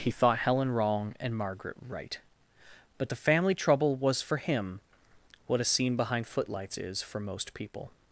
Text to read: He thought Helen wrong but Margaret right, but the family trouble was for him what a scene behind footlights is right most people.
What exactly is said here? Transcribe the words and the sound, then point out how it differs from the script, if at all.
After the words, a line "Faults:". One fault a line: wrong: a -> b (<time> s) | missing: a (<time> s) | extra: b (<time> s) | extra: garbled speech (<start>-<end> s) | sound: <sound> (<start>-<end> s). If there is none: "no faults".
He thought Helen wrong and Margaret right, but the family trouble was for him what a scene behind footlights is for most people.
Faults:
wrong: but -> and (1.2 s)
wrong: right -> for (7.0 s)